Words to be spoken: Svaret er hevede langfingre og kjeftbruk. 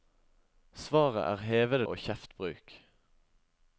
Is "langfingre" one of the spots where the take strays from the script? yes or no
yes